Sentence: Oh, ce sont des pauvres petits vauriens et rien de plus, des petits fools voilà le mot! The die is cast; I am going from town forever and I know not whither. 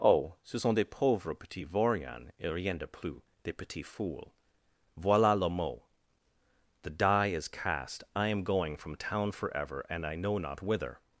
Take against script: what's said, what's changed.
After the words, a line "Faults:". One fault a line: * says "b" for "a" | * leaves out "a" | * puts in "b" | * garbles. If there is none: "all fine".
Oh, ce sont des pauvres petits vauriens et rien de plus, des petits fools voilà le mot! The die is cast; I am going from town forever and I know not whither.
Faults:
all fine